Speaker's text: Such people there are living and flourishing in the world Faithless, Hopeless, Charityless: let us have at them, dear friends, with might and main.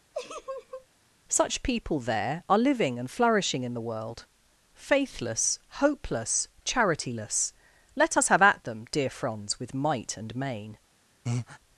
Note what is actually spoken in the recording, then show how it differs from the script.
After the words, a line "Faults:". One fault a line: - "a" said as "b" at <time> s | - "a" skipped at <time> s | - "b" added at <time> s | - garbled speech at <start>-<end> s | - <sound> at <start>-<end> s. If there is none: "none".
Such people there are living and flourishing in the world Faithless, Hopeless, Charityless: let us have at them, dear franz, with might and main.
Faults:
- laugh at 0.1-0.9 s
- "friends" said as "franz" at 9.1 s
- breath at 11.3-11.6 s